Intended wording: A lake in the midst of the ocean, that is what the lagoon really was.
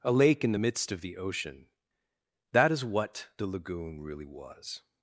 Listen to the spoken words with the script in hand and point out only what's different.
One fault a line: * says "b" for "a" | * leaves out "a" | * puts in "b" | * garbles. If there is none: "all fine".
all fine